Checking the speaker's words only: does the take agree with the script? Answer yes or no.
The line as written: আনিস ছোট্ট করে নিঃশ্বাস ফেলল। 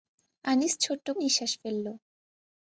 no